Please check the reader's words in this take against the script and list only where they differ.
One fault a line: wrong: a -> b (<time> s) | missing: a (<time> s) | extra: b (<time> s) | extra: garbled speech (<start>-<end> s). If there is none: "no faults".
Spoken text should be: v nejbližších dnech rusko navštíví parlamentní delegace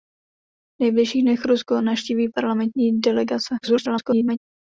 extra: garbled speech (3.6-4.4 s)